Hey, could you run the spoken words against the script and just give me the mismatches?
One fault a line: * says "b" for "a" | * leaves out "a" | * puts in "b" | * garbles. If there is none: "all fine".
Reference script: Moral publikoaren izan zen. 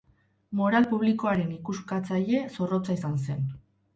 * puts in "ikuskatzaile zorrotza"